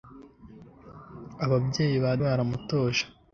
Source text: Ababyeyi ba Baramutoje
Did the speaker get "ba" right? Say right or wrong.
right